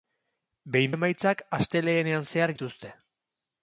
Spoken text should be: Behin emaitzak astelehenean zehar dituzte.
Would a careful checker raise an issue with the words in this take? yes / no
no